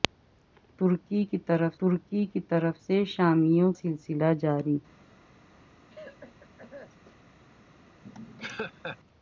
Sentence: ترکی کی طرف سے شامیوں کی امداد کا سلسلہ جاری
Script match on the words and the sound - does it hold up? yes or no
no